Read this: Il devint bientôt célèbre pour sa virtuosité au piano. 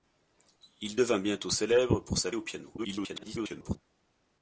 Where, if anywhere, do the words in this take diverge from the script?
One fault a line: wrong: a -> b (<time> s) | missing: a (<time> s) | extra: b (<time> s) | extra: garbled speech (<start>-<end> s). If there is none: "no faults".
missing: virtuosité (2.3 s)
extra: garbled speech (2.8-3.8 s)